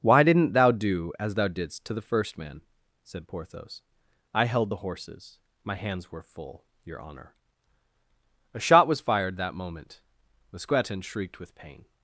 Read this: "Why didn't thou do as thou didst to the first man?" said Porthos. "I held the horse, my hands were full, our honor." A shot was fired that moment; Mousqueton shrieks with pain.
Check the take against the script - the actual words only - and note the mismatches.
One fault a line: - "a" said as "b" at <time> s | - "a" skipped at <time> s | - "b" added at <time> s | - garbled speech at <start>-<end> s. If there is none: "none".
- "horse" said as "horses" at 4.8 s
- "our" said as "your" at 6.8 s
- "shrieks" said as "shrieked" at 11.0 s